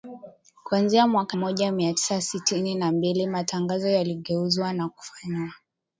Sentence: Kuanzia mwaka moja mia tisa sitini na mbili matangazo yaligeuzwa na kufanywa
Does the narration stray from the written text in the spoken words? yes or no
no